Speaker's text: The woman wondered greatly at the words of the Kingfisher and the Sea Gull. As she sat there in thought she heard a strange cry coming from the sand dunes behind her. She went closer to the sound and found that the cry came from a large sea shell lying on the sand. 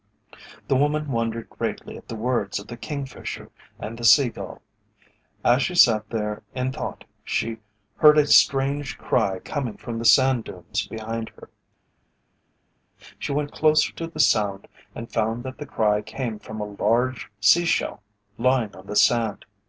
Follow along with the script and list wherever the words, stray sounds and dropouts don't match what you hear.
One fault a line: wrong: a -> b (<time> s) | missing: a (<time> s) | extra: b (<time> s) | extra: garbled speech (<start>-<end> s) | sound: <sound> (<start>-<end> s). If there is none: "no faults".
no faults